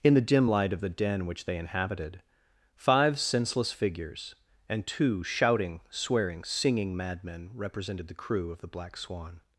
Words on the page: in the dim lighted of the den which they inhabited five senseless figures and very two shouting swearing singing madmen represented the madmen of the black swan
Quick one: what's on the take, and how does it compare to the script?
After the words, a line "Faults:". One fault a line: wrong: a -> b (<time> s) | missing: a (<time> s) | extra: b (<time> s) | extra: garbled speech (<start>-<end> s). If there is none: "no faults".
in the dim light of the den which they inhabited five senseless figures and two shouting swearing singing madmen represented the crew of the black swan
Faults:
wrong: lighted -> light (0.5 s)
missing: very (4.9 s)
wrong: madmen -> crew (8.1 s)